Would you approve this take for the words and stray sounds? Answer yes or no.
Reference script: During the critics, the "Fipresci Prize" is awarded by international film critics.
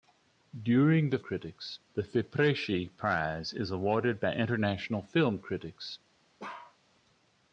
no